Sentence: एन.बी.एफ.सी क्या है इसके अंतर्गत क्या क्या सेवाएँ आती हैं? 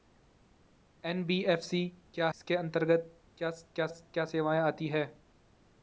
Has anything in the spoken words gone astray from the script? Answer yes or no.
yes